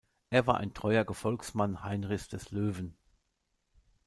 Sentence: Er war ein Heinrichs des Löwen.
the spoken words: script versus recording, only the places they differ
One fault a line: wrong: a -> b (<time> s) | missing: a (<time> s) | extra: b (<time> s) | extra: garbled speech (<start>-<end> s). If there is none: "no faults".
extra: treuer Gefolgsmann (0.7 s)